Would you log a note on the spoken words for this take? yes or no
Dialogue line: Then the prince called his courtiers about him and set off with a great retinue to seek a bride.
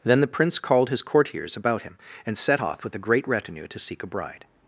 no